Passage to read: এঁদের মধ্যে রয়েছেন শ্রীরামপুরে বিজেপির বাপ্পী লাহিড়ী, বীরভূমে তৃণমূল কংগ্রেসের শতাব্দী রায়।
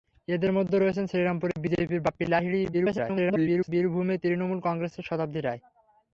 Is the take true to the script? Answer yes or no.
no